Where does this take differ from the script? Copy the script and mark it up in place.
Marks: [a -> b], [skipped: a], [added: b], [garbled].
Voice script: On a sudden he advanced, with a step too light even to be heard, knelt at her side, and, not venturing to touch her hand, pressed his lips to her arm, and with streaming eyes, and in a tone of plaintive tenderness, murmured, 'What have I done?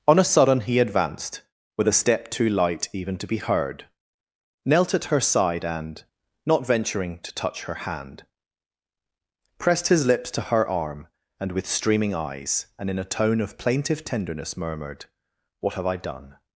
On a sudden he advanced, with a step too light even to be heard, knelt at her side, and, not venturing to touch her hand, pressed his lips to her arm, and with streaming eyes, and in a tone of plaintive tenderness, murmured, 'What have I done?